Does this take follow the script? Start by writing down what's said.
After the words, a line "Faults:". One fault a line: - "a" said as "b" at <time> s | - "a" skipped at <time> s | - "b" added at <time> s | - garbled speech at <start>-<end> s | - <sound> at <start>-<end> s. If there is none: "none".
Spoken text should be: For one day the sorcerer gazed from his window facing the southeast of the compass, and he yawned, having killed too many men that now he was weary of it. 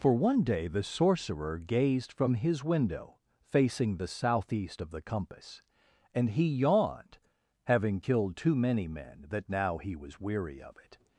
For one day the sorcerer gazed from his window facing the southeast of the compass, and he yawned, having killed too many men that now he was weary of it.
Faults:
none